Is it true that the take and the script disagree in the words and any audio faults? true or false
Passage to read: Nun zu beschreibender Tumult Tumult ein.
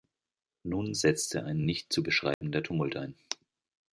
true